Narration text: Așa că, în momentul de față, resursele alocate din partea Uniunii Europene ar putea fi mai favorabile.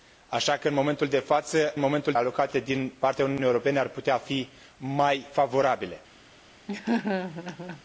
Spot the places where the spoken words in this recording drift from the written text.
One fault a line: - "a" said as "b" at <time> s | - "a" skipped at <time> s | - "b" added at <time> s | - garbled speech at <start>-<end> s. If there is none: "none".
- "resursele" said as "momentul" at 1.8 s